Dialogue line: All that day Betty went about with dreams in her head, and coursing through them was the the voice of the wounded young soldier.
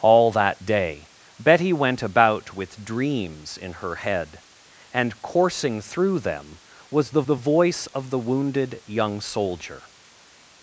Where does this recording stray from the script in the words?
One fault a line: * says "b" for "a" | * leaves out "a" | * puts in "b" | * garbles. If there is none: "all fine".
all fine